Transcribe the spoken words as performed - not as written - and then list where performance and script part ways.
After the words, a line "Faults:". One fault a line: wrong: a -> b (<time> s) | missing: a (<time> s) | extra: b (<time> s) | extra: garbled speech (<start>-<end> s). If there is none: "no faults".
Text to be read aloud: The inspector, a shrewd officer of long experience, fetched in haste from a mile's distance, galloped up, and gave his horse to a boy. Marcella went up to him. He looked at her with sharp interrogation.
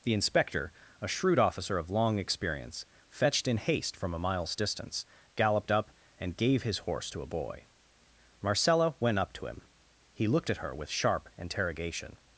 The inspector, a shrewd officer of long experience, fetched in haste from a mile's distance, galloped up, and gave his horse to a boy. Marcella went up to him. He looked at her with sharp interrogation.
Faults:
no faults